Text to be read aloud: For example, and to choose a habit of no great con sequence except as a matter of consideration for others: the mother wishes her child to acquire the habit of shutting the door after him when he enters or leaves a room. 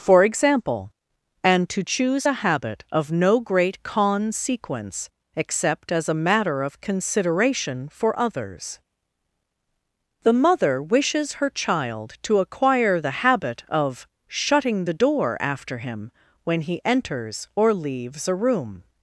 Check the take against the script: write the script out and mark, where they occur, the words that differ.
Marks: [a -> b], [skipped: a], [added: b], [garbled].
For example, and to choose a habit of no great con sequence except as a matter of consideration for others: the mother wishes her child to acquire the habit of shutting the door after him when he enters or leaves a room.